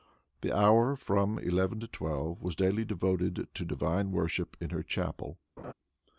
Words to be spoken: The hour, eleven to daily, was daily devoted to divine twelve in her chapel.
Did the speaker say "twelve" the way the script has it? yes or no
no